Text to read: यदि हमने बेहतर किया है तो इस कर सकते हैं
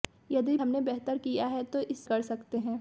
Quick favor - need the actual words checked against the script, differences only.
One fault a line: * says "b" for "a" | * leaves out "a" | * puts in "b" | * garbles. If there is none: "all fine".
all fine